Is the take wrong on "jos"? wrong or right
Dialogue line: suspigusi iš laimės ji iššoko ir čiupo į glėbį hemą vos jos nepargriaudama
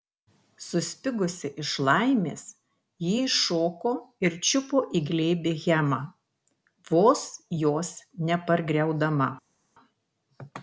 right